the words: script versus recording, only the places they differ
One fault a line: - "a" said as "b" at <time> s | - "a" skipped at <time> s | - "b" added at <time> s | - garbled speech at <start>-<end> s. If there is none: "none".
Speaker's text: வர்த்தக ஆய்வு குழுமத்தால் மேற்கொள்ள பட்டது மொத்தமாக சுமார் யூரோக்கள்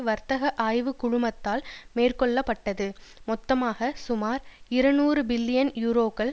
- "இருநூறு பில்லியன்" added at 4.7 s